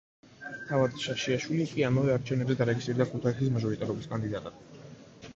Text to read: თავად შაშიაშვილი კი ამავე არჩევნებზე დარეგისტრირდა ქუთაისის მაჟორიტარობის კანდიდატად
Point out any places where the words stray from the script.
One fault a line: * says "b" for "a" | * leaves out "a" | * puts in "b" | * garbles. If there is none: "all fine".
all fine